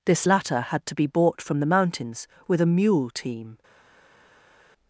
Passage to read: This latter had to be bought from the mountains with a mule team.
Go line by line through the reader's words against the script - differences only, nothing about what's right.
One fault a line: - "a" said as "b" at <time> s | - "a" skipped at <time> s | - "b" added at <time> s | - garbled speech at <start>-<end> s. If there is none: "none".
none